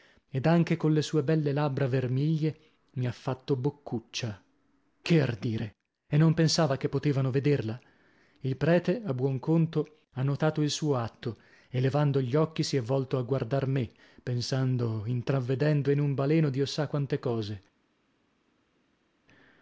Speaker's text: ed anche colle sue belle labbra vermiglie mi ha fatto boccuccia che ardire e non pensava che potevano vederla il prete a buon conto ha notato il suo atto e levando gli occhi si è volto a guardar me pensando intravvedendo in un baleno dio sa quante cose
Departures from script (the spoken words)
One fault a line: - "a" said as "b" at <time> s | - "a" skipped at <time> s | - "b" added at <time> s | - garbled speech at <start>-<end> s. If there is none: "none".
none